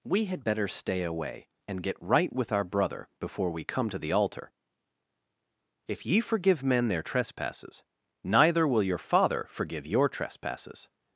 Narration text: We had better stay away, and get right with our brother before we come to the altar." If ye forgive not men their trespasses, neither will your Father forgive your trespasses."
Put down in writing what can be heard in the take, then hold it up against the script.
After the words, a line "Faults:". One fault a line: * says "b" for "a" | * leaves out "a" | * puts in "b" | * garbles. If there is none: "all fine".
We had better stay away, and get right with our brother before we come to the altar." If ye forgive men their trespasses, neither will your Father forgive your trespasses."
Faults:
* leaves out "not"